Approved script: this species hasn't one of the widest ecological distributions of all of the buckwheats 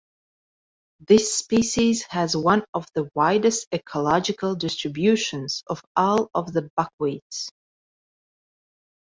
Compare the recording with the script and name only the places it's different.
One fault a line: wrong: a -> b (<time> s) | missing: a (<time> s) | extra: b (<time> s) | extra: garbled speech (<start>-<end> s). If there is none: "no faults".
wrong: hasn't -> has (2.1 s)